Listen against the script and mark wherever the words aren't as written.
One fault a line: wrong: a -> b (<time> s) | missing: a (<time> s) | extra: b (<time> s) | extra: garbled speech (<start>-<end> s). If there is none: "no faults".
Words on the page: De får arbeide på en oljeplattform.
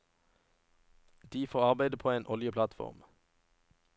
no faults